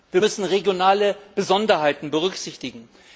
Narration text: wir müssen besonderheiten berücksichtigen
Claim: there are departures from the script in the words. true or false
true